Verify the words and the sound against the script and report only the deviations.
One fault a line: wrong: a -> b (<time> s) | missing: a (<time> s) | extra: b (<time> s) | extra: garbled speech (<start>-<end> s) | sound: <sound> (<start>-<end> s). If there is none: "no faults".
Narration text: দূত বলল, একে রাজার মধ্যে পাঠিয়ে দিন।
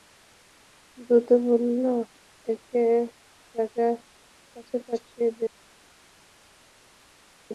wrong: মধ্যে -> কাছে (4.5 s)